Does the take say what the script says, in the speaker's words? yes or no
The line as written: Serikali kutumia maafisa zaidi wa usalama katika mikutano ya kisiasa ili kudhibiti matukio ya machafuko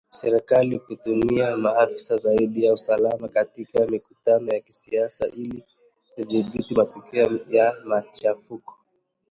yes